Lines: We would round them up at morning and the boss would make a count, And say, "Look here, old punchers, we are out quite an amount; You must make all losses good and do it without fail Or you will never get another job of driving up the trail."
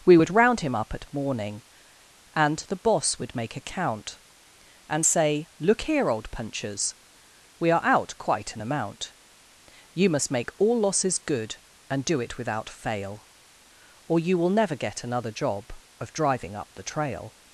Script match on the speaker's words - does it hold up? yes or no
no